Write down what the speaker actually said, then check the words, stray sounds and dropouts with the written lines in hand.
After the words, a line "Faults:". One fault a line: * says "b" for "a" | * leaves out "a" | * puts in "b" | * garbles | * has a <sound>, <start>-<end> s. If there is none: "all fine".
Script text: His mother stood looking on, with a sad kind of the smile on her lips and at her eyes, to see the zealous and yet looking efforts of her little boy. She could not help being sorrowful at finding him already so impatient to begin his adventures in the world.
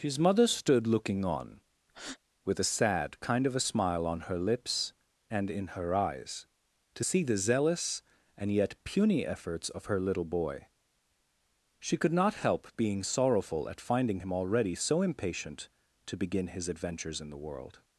His mother stood looking on, with a sad kind of a smile on her lips and in her eyes, to see the zealous and yet puny efforts of her little boy. She could not help being sorrowful at finding him already so impatient to begin his adventures in the world.
Faults:
* has a breath, 1.9-2.2 s
* says "a" for "the"
* says "in" for "at"
* says "puny" for "looking"